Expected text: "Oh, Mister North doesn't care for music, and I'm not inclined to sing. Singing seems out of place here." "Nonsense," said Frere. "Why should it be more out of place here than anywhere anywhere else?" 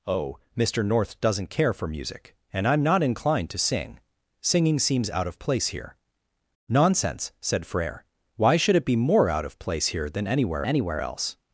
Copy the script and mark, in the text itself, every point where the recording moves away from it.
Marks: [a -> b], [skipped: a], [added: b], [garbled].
"Oh, Mister North doesn't care for music, and I'm not inclined to sing. Singing seems out of place here." "Nonsense," said Frere. "Why should it be more out of place here than anywhere anywhere else?"